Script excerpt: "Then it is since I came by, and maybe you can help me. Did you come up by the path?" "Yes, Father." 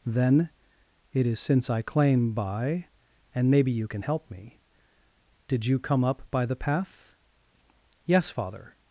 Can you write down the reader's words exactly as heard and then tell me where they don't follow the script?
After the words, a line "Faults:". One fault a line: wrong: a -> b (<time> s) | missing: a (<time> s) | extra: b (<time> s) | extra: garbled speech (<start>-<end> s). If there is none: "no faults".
"Then it is since I claim by, and maybe you can help me. Did you come up by the path?" "Yes, Father."
Faults:
wrong: came -> claim (1.8 s)